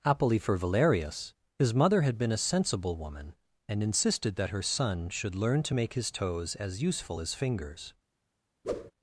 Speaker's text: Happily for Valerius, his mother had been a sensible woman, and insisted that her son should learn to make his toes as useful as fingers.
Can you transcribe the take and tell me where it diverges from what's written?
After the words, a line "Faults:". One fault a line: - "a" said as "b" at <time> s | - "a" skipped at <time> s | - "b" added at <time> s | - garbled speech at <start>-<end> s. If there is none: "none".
Happily for Valerius, his mother had been a sensible woman, and insisted that her son should learn to make his toes as useful as fingers.
Faults:
none